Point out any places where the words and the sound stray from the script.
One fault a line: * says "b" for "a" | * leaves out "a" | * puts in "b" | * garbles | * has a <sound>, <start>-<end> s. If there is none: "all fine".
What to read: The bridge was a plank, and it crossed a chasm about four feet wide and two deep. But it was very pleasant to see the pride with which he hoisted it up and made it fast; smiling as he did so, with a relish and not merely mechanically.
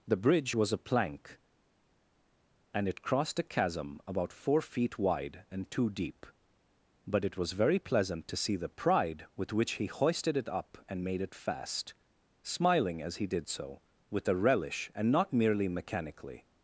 all fine